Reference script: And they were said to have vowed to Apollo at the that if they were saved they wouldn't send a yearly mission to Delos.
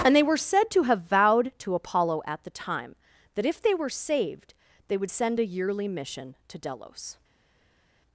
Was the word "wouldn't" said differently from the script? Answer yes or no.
yes